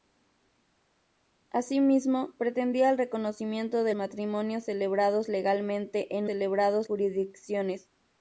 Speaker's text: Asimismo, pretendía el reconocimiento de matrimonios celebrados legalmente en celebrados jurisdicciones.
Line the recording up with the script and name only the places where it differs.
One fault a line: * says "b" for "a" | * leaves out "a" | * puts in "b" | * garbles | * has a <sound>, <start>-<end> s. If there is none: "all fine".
all fine